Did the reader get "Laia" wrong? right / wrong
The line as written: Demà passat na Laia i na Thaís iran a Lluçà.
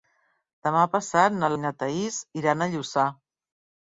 wrong